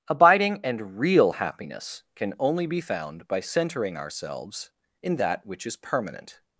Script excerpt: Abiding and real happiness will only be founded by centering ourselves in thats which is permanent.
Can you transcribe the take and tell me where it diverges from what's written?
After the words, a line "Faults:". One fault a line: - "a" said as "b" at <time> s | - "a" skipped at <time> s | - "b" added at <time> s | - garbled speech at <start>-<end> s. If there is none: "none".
Abiding and real happiness can only be found by centering ourselves in that which is permanent.
Faults:
- "will" said as "can" at 2.2 s
- "founded" said as "found" at 2.8 s
- "thats" said as "that" at 5.2 s